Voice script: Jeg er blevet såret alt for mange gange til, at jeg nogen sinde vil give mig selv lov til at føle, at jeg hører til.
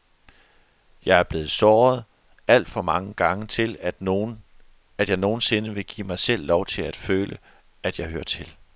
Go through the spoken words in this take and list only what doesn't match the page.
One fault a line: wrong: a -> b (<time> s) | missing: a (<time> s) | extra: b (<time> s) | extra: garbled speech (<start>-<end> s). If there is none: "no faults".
no faults